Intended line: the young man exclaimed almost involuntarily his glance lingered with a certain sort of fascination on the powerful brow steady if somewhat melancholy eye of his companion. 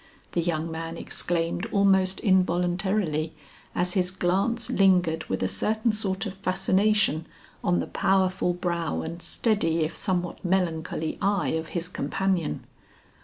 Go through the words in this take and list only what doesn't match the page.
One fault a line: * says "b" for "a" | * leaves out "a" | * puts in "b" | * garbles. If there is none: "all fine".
* puts in "as"
* puts in "and"